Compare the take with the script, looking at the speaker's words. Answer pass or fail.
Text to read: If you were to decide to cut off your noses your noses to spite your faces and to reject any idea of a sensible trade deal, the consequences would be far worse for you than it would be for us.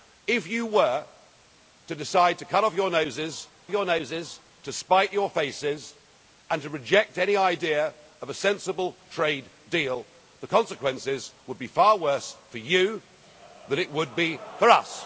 pass